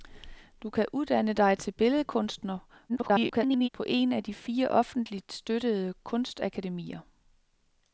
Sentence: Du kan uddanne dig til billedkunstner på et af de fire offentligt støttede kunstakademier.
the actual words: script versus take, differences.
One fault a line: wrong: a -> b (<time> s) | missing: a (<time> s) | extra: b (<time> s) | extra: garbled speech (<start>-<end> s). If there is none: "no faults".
extra: garbled speech (2.9-3.7 s)